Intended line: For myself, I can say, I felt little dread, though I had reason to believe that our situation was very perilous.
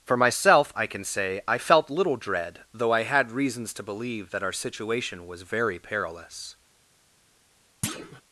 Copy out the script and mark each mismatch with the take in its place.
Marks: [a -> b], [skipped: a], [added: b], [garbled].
For myself, I can say, I felt little dread, though I had [reason -> reasons] to believe that our situation was very perilous.